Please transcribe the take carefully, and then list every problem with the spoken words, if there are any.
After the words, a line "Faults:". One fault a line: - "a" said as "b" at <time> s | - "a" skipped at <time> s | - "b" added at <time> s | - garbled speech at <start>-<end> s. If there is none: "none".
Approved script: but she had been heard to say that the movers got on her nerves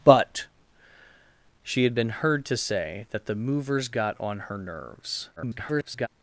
but she had been heard to say that the movers got on her nerves [garbled]
Faults:
- garbled speech at 5.4-6.1 s